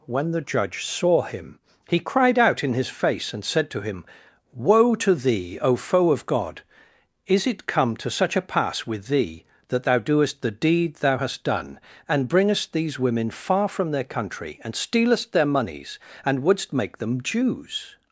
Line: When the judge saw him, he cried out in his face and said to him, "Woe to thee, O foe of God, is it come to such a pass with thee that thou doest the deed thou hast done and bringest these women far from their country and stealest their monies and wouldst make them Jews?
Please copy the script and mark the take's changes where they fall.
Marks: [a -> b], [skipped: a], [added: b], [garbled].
When the judge saw him, he cried out in his face and said to him, "Woe to thee, O foe of God, is it come to such a pass with thee that thou doest the deed thou hast done and bringest these women far from their country and stealest their monies and wouldst make them Jews?